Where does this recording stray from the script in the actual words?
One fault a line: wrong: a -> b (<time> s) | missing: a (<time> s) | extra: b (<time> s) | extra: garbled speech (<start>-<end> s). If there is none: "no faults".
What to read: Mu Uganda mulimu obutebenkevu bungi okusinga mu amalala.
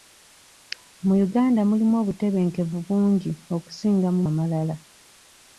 no faults